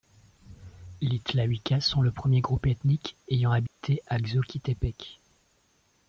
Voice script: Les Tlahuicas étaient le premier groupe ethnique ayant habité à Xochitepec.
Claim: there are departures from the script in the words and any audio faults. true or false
true